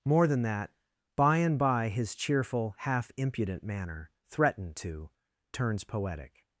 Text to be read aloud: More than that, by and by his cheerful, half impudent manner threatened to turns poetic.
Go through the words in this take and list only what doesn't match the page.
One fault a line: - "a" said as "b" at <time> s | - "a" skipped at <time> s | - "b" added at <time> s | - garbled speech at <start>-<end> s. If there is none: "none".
none